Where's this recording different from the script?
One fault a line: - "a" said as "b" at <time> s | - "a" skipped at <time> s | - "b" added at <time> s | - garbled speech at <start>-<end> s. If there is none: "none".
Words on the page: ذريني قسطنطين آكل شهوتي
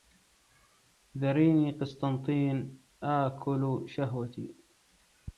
none